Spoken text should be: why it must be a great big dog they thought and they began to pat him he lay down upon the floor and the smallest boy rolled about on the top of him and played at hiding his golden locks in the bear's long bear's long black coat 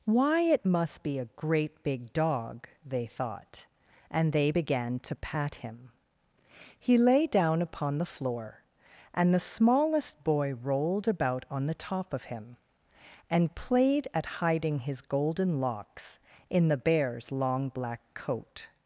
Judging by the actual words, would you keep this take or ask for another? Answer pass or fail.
fail